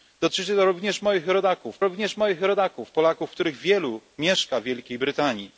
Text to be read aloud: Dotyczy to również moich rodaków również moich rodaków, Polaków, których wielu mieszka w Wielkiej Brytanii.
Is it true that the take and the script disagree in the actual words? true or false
false